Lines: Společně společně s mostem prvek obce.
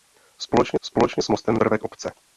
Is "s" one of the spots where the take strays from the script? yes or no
no